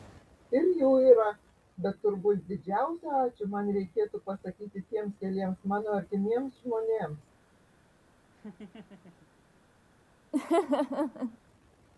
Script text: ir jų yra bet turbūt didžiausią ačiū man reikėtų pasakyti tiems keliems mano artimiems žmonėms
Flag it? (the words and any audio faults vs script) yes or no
yes